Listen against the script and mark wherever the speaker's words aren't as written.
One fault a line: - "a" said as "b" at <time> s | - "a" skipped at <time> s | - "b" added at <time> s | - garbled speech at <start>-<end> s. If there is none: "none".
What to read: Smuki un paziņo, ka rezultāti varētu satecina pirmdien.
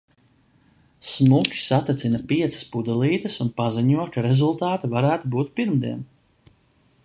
- "satecina piecas pudelītes" added at 1.6 s
- "satecina" said as "būt" at 5.4 s